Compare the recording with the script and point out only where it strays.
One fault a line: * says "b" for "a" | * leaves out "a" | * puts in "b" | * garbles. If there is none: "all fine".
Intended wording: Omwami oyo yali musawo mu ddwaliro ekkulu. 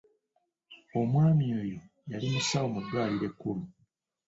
all fine